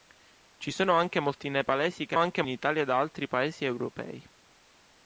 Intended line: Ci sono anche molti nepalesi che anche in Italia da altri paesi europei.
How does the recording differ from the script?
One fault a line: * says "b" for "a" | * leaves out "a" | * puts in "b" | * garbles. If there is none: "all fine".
all fine